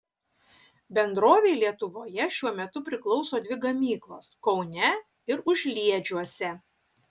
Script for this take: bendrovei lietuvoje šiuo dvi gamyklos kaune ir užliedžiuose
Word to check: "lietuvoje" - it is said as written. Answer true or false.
true